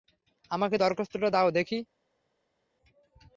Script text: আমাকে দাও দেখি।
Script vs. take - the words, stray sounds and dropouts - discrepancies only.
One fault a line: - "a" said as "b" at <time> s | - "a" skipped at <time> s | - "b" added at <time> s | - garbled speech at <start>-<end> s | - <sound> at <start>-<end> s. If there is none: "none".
- "দরখাস্তটা" added at 0.7 s